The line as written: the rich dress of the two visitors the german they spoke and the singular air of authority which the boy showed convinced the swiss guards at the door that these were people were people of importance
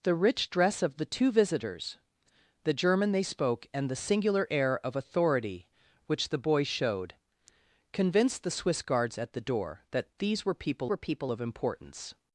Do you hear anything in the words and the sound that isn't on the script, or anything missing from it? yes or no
no